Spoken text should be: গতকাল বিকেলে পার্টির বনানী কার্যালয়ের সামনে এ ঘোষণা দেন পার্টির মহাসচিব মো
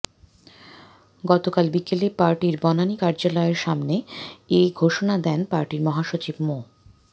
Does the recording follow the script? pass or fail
pass